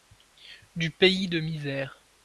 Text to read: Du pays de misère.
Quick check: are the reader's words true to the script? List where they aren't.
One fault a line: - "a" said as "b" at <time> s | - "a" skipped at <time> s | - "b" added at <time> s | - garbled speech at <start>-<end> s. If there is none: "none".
none